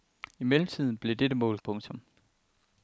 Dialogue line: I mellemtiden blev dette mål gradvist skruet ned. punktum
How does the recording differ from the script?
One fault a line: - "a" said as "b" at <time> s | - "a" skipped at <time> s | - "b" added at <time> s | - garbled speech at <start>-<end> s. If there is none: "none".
- "gradvist skruet ned" skipped at 1.6 s